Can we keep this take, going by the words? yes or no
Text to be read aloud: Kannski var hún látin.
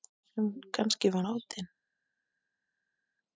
no